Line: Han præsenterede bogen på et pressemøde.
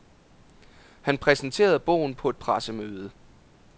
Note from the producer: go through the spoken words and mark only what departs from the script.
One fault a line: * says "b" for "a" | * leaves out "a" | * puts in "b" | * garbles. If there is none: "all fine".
all fine